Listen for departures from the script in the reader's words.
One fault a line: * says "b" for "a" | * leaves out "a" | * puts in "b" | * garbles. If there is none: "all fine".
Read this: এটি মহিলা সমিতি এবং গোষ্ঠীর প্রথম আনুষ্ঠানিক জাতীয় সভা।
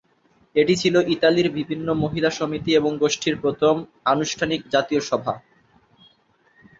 * puts in "ছিল ইতালির বিভিন্ন"